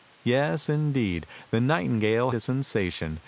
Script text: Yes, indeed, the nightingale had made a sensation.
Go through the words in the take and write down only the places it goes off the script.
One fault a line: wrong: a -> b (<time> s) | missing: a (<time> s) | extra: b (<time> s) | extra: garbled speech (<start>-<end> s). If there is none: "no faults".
missing: had made (2.3 s)